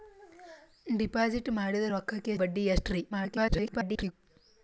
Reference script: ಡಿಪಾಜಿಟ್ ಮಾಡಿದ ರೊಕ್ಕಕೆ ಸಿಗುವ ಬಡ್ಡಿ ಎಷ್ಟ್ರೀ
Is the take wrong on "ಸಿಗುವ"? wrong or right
wrong